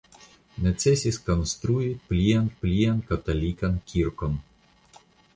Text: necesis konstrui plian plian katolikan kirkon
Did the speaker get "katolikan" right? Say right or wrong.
right